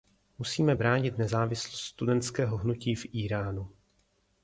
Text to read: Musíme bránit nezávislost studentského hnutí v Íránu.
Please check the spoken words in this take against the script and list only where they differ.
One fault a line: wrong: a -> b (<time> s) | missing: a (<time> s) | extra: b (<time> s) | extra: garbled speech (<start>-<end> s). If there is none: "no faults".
no faults